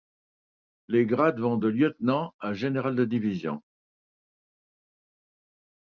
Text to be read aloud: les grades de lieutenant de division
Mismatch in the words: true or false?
true